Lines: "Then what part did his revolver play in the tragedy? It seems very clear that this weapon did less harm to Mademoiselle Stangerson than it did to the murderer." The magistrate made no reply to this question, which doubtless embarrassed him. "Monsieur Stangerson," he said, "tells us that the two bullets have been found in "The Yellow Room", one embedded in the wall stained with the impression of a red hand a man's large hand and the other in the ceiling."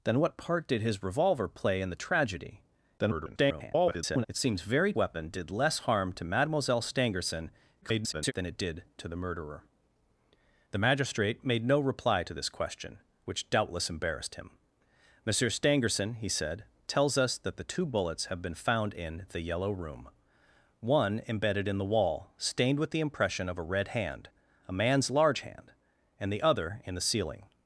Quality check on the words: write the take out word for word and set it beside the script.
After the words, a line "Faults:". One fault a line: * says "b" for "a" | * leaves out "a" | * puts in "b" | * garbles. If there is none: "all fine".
"Then what part did his revolver play in the tragedy? [garbled] It seems very weapon did less harm to Mademoiselle Stangerson [garbled] than it did to the murderer." The magistrate made no reply to this question, which doubtless embarrassed him. "Monsieur Stangerson," he said, "tells us that the two bullets have been found in "The Yellow Room", one embedded in the wall stained with the impression of a red hand a man's large hand and the other in the ceiling."
Faults:
* garbles
* leaves out "clear that this"
* garbles